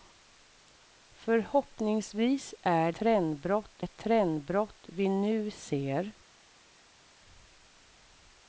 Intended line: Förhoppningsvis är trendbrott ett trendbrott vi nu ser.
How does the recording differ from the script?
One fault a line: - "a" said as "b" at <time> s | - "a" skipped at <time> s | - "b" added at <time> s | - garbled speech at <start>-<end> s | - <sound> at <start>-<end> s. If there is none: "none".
none